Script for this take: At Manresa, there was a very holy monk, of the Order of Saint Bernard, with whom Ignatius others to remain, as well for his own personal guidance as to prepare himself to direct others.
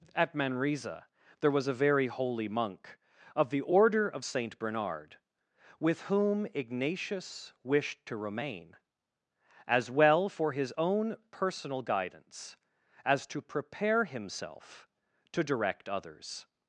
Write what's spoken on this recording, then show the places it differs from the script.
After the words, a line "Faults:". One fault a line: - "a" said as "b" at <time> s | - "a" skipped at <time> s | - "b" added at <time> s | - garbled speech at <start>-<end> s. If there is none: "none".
At Manresa, there was a very holy monk, of the Order of Saint Bernard, with whom Ignatius wished to remain, as well for his own personal guidance as to prepare himself to direct others.
Faults:
- "others" said as "wished" at 7.6 s